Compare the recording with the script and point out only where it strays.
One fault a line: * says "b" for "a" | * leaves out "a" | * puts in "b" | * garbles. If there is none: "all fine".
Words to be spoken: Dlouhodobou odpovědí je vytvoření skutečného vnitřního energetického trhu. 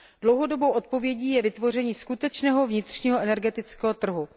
all fine